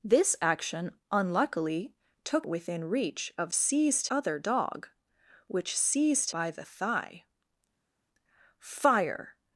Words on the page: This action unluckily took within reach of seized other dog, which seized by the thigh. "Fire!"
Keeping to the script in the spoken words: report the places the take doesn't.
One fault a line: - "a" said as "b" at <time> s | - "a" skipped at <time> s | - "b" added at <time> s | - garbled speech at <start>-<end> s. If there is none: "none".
none